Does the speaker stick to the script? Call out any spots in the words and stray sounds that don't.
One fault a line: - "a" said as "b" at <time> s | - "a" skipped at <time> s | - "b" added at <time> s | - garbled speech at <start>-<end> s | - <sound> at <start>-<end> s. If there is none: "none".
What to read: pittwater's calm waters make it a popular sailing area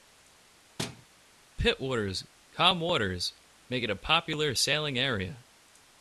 - thud at 0.8-1.1 s